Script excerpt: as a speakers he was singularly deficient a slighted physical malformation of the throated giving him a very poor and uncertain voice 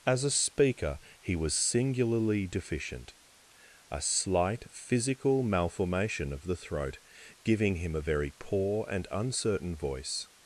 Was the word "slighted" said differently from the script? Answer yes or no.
yes